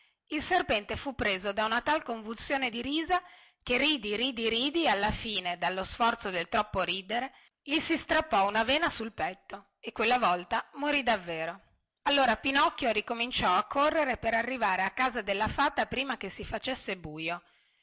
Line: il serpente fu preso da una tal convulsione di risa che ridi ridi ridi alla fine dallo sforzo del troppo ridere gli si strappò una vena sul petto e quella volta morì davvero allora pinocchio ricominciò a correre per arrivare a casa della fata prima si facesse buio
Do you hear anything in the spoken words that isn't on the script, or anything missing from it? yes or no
yes